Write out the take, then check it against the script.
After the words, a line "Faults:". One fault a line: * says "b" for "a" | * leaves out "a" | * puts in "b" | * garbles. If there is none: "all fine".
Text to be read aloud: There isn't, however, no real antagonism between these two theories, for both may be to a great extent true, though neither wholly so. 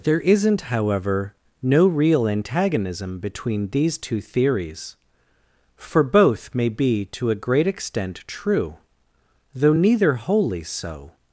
There isn't, however, no real antagonism between these two theories, for both may be to a great extent true, though neither wholly so.
Faults:
all fine